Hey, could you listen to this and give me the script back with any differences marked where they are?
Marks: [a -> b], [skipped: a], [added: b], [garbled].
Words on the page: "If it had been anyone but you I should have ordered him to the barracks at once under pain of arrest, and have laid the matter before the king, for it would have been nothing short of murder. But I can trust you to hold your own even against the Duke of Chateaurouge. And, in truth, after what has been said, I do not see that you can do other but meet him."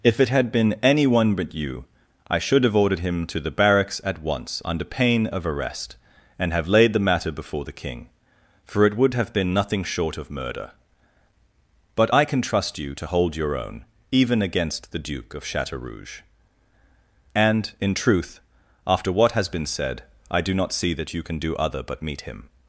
"If it had been anyone but you I should have ordered him to the barracks at once under pain of arrest, and have laid the matter before the king, for it would have been nothing short of murder. But I can trust you to hold your own even against the Duke of Chateaurouge. And, in truth, after what has been said, I do not see that you can do other but meet him."